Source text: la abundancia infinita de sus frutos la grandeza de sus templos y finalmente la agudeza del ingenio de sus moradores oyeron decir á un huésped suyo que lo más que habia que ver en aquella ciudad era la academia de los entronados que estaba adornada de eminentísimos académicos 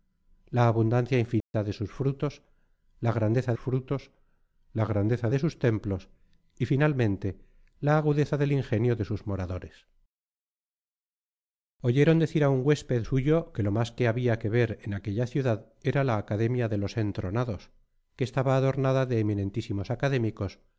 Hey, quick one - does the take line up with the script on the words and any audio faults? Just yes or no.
no